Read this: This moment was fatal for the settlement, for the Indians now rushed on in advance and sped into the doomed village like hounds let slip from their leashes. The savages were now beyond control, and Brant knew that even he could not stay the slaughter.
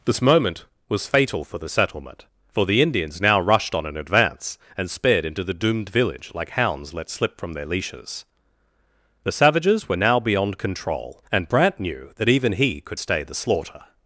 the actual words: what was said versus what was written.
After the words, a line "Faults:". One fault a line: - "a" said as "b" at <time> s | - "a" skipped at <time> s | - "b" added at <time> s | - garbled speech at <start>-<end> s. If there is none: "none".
This moment was fatal for the settlement, for the Indians now rushed on in advance and sped into the doomed village like hounds let slip from their leashes. The savages were now beyond control, and Brant knew that even he could stay the slaughter.
Faults:
- "not" skipped at 13.0 s